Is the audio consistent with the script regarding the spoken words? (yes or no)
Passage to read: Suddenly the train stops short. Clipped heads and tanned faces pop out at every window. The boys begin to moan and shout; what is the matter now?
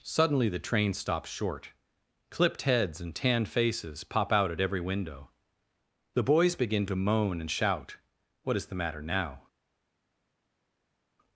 yes